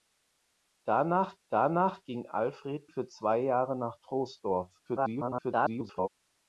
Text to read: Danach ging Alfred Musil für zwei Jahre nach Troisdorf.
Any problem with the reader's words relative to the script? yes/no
yes